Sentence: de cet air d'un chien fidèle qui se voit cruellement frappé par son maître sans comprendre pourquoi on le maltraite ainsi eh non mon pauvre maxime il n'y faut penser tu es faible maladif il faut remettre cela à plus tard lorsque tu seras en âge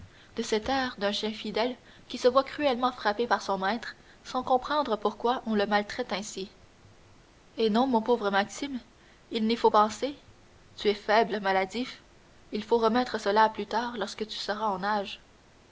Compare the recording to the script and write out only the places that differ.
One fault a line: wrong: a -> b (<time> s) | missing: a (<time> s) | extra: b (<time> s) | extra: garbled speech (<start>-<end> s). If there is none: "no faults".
no faults